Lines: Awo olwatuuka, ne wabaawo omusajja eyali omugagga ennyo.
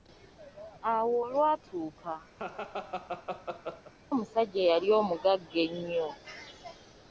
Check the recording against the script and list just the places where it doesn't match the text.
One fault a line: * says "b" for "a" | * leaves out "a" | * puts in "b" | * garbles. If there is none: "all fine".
* leaves out "ne wabaawo"